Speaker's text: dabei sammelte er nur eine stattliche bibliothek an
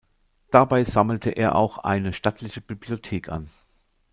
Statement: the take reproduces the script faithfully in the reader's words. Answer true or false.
false